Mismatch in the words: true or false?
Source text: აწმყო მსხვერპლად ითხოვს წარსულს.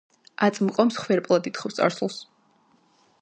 false